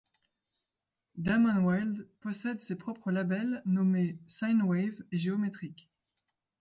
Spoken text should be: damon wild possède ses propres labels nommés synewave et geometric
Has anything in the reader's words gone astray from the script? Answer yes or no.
no